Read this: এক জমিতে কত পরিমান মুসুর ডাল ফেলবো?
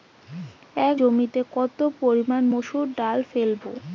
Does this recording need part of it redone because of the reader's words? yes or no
no